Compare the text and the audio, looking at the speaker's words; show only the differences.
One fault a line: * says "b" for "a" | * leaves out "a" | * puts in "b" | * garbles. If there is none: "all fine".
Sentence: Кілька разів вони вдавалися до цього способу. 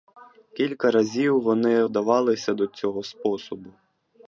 all fine